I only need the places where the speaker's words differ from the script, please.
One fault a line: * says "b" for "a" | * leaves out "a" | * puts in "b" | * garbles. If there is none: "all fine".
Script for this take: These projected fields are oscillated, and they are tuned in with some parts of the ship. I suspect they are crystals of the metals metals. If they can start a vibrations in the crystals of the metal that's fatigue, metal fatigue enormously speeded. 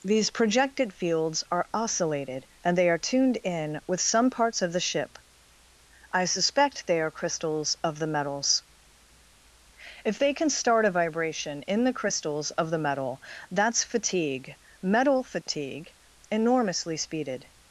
* leaves out "metals"
* says "vibration" for "vibrations"